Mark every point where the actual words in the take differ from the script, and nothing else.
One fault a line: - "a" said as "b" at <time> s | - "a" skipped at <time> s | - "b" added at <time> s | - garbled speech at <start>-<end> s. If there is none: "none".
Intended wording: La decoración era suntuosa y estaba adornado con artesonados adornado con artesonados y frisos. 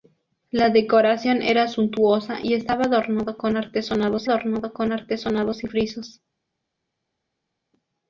none